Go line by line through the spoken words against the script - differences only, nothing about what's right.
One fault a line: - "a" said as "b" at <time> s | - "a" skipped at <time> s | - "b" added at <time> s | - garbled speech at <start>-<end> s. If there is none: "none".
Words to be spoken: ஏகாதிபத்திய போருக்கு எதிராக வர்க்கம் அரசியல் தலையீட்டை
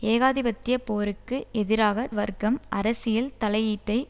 none